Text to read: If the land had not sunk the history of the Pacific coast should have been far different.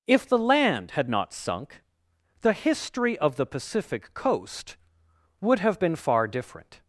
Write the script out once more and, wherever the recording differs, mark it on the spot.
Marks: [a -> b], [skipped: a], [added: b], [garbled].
If the land had not sunk the history of the Pacific coast [should -> would] have been far different.